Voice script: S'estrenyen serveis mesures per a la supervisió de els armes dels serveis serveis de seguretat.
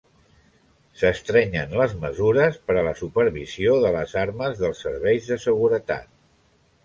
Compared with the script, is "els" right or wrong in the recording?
wrong